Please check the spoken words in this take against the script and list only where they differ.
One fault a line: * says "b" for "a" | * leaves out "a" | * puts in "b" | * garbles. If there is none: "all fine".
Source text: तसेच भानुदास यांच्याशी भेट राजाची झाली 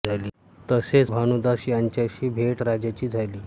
all fine